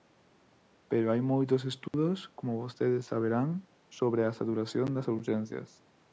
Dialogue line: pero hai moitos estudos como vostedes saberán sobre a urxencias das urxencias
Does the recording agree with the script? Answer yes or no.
no